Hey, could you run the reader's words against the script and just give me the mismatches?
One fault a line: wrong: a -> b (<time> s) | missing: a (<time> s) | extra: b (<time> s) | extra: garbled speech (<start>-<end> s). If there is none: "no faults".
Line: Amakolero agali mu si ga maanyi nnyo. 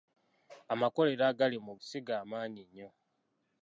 no faults